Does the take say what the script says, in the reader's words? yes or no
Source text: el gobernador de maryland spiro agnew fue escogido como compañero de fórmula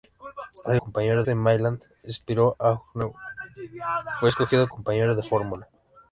no